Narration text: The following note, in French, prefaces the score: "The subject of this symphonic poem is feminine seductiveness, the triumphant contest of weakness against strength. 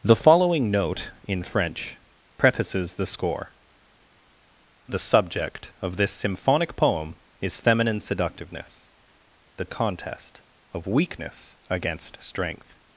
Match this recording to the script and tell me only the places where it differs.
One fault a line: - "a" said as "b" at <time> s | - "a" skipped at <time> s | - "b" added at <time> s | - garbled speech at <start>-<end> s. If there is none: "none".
- "triumphant" skipped at 9.7 s